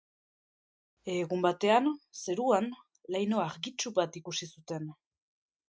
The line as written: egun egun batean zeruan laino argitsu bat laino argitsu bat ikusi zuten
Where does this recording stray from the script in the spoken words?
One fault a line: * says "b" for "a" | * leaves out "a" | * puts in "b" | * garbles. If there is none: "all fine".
* leaves out "egun"
* leaves out "laino argitsu bat"